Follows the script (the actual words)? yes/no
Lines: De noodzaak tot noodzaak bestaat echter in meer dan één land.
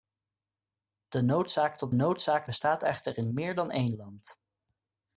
yes